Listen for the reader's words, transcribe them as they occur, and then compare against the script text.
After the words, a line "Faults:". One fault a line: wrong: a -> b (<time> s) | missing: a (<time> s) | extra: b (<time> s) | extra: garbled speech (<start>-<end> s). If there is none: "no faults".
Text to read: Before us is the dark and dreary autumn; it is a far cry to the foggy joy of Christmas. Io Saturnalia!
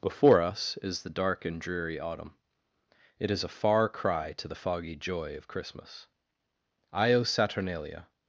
Before us is the dark and dreary autumn; it is a far cry to the foggy joy of Christmas. Io Saturnalia!
Faults:
no faults